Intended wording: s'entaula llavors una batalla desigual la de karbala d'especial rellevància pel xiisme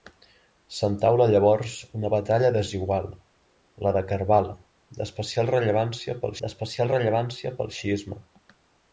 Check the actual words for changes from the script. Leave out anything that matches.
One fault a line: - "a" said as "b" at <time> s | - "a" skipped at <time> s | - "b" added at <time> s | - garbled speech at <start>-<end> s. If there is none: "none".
- "d'especial rellevància pel" added at 6.4 s